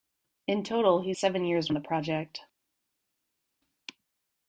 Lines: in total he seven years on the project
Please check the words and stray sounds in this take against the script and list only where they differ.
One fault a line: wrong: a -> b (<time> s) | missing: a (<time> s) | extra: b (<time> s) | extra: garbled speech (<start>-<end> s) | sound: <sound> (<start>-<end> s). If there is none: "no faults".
no faults